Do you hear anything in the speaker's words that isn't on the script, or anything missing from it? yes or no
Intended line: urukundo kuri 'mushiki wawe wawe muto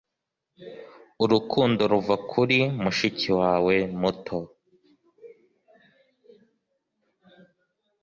yes